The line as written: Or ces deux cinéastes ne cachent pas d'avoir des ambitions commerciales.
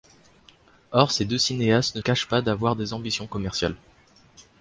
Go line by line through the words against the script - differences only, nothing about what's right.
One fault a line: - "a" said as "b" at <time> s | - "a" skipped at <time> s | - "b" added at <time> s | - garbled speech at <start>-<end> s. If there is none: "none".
none